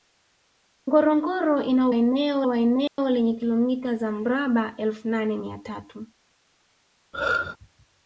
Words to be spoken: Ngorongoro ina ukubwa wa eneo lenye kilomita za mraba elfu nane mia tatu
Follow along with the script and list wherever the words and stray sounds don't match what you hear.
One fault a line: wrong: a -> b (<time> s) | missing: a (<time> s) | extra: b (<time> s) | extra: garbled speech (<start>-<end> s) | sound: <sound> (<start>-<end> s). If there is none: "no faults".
wrong: ukubwa -> eneo (1.9 s)
sound: dropout (2.9-3.0 s)
sound: throat clearing (7.1-7.6 s)